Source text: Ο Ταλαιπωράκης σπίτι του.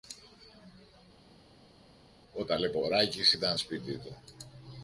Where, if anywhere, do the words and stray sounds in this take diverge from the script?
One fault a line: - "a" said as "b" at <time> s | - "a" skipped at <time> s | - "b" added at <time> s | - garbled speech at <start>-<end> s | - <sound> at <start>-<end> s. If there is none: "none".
- "ήταν" added at 3.3 s